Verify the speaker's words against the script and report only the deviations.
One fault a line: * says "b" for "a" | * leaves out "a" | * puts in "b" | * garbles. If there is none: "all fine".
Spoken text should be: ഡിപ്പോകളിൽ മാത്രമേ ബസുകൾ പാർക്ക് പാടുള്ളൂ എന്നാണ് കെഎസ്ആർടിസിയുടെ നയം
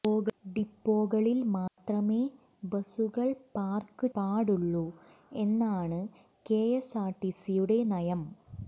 all fine